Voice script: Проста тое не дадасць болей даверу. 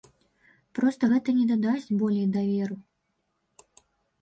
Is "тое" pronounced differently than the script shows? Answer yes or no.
yes